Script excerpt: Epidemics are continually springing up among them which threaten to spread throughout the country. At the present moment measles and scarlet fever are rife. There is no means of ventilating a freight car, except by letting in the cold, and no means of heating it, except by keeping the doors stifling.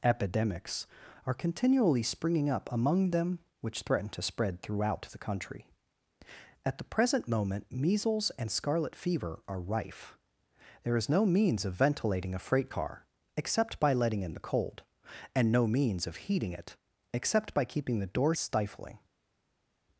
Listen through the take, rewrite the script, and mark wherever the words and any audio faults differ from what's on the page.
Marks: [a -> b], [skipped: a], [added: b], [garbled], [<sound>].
Epidemics are continually springing up among them which threaten to spread throughout the country. At the present moment measles and scarlet fever are rife. There is no means of ventilating a freight car, except by letting in the cold, and no means of heating it, except by keeping the doors stifling.